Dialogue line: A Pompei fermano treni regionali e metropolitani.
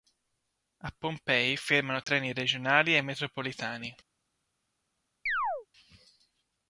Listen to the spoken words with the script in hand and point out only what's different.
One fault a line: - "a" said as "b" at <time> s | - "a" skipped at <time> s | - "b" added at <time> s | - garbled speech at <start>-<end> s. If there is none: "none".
none